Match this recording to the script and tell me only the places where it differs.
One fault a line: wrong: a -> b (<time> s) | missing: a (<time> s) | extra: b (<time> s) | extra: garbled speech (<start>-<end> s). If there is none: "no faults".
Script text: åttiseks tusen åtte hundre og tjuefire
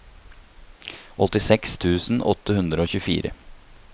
no faults